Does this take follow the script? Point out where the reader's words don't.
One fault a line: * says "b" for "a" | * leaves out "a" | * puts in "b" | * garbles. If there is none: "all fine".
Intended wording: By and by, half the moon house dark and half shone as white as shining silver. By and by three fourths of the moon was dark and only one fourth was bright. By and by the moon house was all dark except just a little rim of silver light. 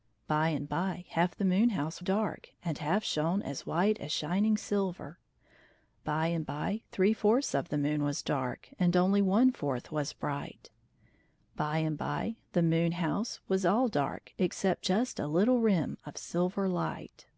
all fine